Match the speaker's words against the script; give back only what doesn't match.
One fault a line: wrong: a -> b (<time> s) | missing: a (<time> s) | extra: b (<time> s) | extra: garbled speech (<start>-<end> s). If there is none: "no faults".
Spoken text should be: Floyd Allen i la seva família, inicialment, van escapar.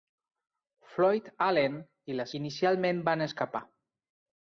missing: seva família (2.3 s)